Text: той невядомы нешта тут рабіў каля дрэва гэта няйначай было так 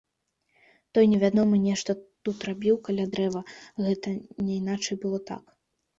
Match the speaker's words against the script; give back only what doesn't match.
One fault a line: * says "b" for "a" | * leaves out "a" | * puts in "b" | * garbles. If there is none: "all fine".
all fine